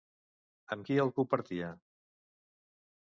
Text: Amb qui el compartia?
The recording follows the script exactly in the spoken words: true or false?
true